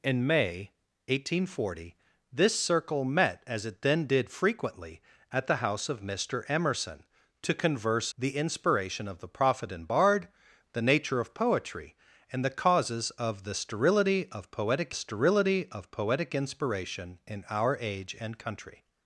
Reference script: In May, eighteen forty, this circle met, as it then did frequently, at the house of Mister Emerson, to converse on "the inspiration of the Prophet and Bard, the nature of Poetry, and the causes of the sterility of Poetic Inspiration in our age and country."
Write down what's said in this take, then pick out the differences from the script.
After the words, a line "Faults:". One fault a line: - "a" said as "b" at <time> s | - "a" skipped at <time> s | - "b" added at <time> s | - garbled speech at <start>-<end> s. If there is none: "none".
In May, eighteen forty, this circle met, as it then did frequently, at the house of Mister Emerson, to converse "the inspiration of the Prophet and Bard, the nature of Poetry, and the causes of the sterility of Poetic sterility of Poetic Inspiration in our age and country."
Faults:
- "on" skipped at 8.1 s
- "sterility of Poetic" added at 14.9 s